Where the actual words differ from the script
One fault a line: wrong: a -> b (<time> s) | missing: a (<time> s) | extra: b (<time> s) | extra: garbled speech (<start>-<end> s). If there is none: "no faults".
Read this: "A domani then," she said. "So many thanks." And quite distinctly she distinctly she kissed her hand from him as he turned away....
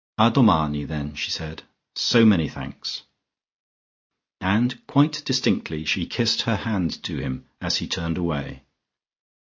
missing: distinctly she (6.1 s)
wrong: from -> to (7.0 s)